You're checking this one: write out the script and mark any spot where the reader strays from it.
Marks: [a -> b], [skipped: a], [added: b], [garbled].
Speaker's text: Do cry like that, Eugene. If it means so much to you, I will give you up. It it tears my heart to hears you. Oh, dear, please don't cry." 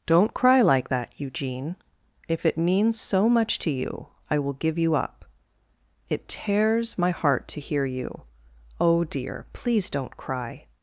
[Do -> Don't] cry like that, Eugene. If it means so much to you, I will give you up. It [skipped: it] tears my heart to [hears -> hear] you. Oh, dear, please don't cry."